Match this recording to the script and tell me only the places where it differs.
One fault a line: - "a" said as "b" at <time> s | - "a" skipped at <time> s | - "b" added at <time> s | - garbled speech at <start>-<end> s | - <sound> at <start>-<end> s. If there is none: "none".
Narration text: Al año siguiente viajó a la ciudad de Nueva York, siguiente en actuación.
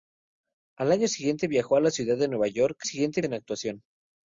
none